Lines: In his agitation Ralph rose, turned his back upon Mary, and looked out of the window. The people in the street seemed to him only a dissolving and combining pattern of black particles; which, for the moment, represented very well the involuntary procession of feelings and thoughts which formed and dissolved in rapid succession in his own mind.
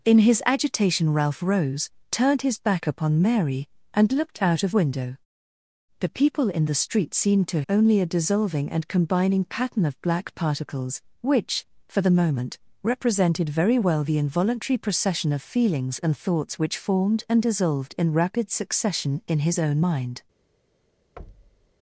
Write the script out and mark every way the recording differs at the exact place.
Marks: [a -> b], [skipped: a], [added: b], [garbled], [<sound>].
In his agitation Ralph rose, turned his back upon Mary, and looked out of [skipped: the] window. The people in the street seemed to [skipped: him] only a dissolving and combining pattern of black particles; which, for the moment, represented very well the involuntary procession of feelings and thoughts which formed and dissolved in rapid succession in his own mind. [thud]